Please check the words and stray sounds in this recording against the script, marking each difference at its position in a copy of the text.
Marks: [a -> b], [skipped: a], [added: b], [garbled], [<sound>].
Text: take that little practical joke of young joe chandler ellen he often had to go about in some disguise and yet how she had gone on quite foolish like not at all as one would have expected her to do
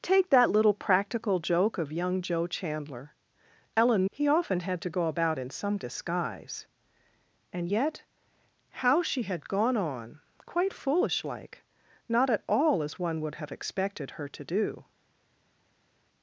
take that little practical joke of young joe chandler ellen he often had to go about in some disguise and yet how she had gone on quite foolish like not at all as one would have expected her to do